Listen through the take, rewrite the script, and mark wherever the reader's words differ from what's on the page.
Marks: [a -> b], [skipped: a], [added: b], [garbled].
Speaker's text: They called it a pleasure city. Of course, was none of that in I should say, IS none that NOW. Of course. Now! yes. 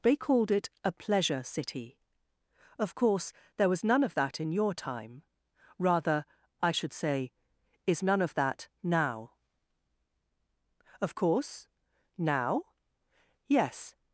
They called it a pleasure city. Of course, [added: there] was none of that in [added: your time rather] I should say, IS none [added: of] that NOW. Of course. Now! yes.